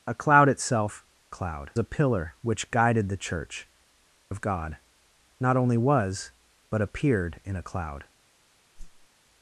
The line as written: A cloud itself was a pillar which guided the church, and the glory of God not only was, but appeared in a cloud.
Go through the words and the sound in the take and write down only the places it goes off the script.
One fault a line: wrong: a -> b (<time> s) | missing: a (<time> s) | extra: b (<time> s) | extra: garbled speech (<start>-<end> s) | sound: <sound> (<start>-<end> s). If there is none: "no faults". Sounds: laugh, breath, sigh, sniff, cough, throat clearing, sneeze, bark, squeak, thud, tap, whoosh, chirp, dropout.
wrong: was -> cloud (1.3 s)
missing: and the glory (3.7 s)
sound: whoosh (8.7-9.1 s)